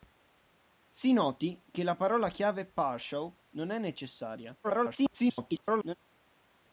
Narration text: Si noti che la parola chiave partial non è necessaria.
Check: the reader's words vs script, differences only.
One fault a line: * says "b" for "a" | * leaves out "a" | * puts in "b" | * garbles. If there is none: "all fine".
* garbles